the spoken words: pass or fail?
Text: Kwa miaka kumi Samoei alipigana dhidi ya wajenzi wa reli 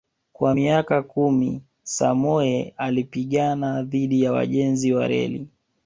pass